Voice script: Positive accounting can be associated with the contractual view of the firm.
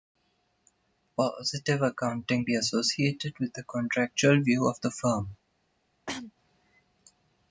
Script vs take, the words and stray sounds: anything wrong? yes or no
yes